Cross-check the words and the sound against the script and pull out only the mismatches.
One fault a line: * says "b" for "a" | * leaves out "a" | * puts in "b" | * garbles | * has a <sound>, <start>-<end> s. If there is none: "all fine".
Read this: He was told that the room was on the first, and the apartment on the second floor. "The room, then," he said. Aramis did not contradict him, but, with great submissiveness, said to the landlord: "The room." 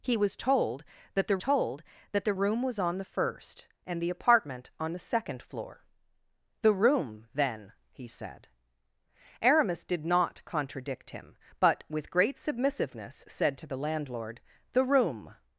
* puts in "told that the"